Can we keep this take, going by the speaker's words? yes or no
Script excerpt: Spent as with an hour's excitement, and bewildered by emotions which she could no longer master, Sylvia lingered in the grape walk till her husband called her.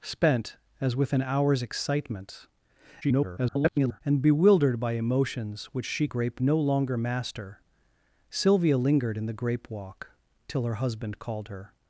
no